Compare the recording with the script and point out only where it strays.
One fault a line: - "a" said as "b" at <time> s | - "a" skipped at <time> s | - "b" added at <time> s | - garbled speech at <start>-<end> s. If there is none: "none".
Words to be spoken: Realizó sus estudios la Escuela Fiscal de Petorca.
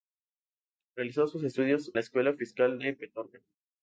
none